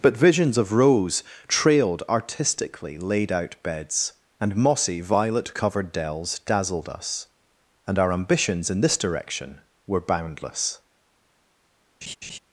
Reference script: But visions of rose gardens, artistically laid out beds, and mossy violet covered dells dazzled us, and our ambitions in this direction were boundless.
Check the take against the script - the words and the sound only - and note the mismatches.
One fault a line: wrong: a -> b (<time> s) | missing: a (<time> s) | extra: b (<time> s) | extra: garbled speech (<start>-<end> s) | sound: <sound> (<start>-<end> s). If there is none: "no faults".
wrong: gardens -> trailed (1.5 s)
sound: laugh (12.0-12.4 s)